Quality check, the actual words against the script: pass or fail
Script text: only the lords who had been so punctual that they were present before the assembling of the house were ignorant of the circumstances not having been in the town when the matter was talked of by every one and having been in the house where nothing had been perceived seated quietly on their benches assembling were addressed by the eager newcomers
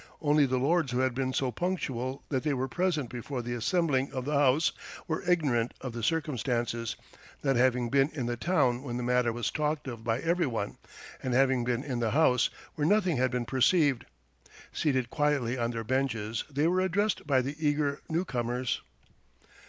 fail